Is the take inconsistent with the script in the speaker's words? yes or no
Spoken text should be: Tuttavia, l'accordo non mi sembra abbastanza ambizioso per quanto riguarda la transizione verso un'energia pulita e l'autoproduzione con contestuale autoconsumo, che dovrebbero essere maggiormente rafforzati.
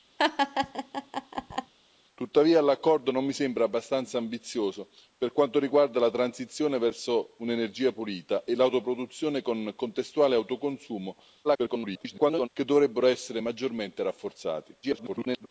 yes